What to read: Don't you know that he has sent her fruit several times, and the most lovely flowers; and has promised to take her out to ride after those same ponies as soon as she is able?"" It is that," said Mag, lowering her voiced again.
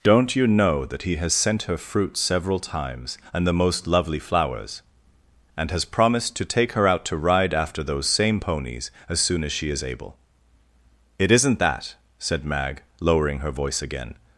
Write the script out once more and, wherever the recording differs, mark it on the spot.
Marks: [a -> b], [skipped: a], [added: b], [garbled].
Don't you know that he has sent her fruit several times, and the most lovely flowers; and has promised to take her out to ride after those same ponies as soon as she is able?"" It [is -> isn't] that," said Mag, lowering her [voiced -> voice] again.